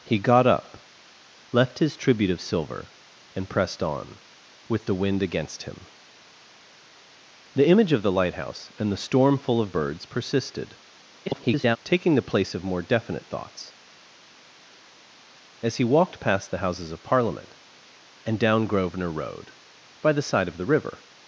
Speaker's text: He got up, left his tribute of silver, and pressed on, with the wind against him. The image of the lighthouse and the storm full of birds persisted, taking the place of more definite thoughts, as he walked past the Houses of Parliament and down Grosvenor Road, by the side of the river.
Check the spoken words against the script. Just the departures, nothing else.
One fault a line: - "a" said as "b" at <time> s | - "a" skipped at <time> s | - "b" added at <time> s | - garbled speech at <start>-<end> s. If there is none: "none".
- garbled speech at 11.3-11.8 s